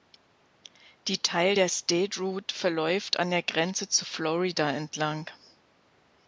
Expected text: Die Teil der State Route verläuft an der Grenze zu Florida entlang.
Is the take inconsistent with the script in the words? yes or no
no